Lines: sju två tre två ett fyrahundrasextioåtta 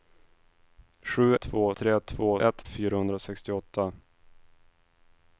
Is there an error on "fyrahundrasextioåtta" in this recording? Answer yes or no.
no